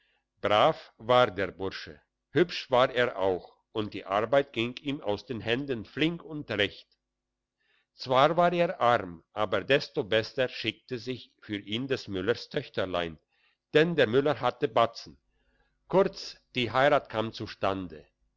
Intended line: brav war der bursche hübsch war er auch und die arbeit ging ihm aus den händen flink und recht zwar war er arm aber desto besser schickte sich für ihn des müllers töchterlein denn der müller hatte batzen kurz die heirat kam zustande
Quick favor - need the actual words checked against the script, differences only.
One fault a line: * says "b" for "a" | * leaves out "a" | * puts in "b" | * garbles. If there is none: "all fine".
all fine